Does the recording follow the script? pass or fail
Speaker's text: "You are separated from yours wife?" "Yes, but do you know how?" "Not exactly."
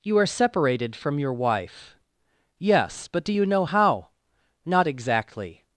fail